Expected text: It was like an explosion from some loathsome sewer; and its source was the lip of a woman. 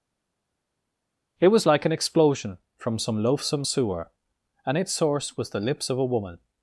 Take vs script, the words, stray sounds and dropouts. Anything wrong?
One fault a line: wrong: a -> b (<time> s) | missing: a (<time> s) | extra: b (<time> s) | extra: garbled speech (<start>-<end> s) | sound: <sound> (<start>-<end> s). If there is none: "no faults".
wrong: lip -> lips (5.6 s)